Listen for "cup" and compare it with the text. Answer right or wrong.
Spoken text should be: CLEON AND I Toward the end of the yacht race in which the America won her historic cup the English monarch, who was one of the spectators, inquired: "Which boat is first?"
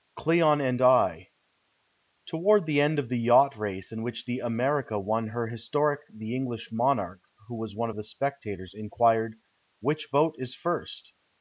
wrong